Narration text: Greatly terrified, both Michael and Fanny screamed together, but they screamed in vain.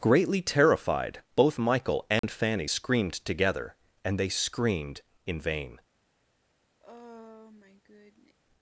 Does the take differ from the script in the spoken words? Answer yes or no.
yes